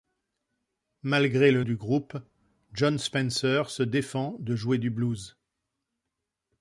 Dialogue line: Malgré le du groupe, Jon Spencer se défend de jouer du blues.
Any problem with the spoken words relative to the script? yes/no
no